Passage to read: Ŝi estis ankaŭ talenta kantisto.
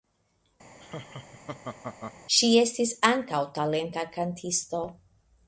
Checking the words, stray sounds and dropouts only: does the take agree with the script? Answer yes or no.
no